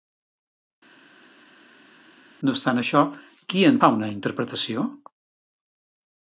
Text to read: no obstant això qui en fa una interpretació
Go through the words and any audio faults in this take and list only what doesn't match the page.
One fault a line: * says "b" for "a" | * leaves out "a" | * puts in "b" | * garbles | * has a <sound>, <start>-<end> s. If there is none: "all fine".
all fine